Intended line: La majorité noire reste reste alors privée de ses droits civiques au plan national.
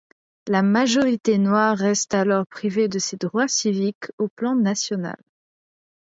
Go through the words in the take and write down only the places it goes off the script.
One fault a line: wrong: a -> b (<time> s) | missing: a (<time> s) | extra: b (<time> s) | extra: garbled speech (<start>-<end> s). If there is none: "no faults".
missing: reste (2.1 s)